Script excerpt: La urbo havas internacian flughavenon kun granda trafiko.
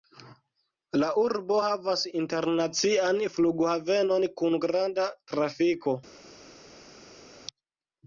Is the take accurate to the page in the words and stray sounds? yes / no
yes